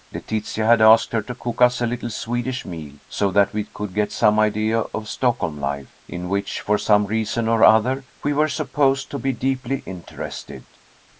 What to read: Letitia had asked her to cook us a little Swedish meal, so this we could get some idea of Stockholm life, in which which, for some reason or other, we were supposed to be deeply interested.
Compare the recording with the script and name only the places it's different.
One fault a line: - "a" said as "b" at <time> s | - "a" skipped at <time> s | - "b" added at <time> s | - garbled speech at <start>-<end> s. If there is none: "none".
- "this" said as "that" at 3.3 s
- "which" skipped at 6.6 s